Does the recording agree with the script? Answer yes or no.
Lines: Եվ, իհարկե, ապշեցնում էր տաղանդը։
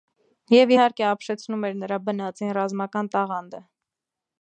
no